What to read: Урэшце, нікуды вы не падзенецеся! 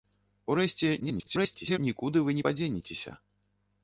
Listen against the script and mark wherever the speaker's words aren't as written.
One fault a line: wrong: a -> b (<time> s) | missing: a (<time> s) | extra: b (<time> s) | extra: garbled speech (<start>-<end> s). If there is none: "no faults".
extra: garbled speech (1.0-1.8 s)